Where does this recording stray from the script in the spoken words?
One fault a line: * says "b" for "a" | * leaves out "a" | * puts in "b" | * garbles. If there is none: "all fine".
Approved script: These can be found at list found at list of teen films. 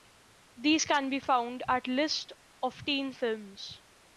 * leaves out "found at list"